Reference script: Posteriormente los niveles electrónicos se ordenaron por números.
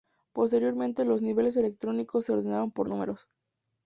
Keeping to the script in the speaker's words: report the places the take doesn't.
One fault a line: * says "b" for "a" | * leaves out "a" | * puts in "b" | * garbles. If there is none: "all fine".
all fine